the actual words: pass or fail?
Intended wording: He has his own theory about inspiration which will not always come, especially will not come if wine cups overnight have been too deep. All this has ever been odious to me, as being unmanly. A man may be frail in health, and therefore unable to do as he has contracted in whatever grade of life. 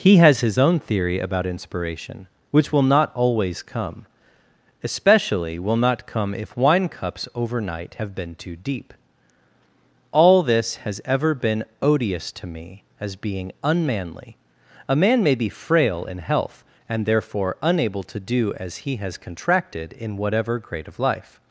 pass